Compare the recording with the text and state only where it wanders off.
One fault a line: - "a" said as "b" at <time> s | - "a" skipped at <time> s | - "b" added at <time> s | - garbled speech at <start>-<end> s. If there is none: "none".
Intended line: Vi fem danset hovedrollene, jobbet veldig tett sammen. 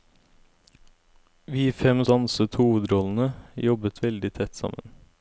none